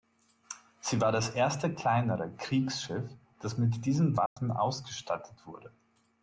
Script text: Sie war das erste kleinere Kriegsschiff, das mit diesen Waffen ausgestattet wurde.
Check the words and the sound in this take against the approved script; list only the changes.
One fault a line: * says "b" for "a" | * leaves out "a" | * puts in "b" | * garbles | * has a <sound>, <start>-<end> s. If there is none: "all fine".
* has a dropout, 4.3-4.4 s